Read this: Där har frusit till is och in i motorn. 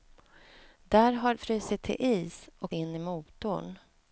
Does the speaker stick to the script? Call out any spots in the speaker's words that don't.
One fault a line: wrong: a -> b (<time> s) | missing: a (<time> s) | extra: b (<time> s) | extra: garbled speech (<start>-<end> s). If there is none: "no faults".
no faults